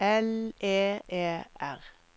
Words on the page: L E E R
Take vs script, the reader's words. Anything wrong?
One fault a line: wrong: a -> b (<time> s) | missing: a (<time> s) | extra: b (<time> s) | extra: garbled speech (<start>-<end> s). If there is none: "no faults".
no faults